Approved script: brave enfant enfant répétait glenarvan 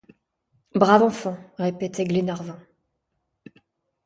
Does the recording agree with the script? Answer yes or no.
no